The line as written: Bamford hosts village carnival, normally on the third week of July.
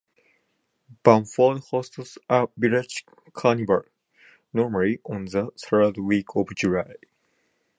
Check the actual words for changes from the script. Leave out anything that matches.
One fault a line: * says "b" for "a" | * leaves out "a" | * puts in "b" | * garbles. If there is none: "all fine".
* puts in "a"